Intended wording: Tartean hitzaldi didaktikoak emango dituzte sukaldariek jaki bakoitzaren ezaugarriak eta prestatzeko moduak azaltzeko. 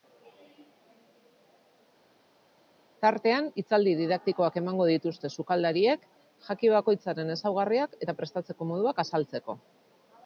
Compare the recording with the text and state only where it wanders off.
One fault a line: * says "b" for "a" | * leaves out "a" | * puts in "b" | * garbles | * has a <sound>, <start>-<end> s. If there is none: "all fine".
all fine